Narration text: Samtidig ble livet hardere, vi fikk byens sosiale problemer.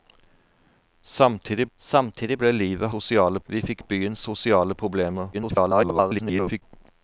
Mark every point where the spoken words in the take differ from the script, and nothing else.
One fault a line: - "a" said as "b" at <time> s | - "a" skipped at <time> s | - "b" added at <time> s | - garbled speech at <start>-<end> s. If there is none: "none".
- "samtidig" added at 1.8 s
- "hardere" said as "sosiale" at 2.9 s
- garbled speech at 5.3-6.6 s